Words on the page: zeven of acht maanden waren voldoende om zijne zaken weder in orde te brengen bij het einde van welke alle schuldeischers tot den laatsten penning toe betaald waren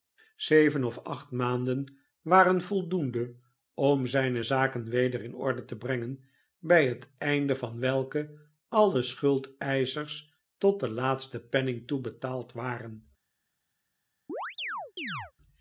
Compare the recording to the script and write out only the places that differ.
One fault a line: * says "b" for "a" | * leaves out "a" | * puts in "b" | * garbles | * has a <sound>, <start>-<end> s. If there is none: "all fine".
* has a chirp, 14.3-15.3 s